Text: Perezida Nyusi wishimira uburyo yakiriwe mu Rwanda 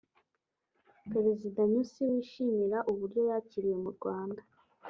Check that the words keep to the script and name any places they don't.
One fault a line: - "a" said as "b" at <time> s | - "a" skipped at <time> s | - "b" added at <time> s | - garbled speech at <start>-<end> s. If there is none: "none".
none